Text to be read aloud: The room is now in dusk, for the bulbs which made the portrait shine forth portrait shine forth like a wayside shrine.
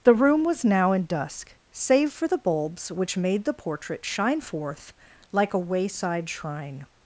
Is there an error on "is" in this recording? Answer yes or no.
yes